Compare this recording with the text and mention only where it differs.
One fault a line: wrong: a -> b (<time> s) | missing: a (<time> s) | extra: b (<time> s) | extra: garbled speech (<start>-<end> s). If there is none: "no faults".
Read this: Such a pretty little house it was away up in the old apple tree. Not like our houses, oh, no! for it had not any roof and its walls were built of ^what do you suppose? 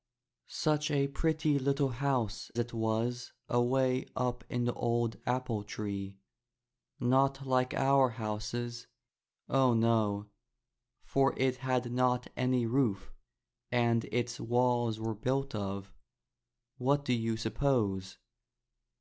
no faults